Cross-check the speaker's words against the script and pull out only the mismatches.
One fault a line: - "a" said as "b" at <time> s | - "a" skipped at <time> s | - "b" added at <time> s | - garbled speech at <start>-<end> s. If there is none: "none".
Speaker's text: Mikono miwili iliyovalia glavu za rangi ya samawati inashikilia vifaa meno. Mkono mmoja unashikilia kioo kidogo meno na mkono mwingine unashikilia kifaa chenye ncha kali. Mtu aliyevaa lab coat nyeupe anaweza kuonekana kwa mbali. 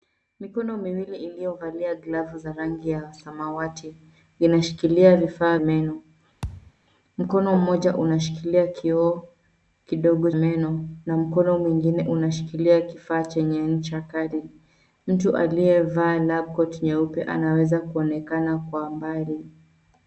none